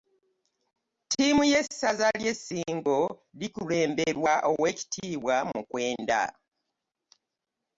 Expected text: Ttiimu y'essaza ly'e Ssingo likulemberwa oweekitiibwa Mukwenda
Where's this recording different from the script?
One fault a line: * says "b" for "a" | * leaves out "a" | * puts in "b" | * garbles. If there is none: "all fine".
all fine